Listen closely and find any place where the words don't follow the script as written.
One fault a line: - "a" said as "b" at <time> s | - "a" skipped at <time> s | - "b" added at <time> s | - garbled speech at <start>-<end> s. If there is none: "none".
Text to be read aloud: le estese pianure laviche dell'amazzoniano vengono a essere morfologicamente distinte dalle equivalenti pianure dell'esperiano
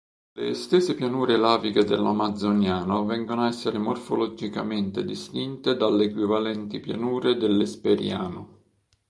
none